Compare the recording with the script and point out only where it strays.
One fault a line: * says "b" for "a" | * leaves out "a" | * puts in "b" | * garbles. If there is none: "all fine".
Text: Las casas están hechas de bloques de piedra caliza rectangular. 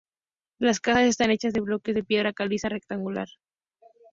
all fine